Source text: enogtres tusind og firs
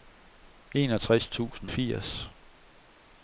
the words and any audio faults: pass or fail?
fail